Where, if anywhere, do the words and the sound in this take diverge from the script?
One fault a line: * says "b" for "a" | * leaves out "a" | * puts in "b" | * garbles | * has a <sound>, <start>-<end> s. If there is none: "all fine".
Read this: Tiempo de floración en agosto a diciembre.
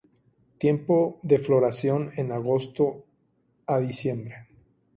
all fine